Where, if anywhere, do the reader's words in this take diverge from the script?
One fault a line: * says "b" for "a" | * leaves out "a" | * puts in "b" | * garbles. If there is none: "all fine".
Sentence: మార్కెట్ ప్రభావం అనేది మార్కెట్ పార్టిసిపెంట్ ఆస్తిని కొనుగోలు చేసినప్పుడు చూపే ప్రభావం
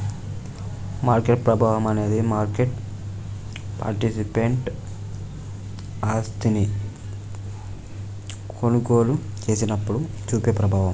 all fine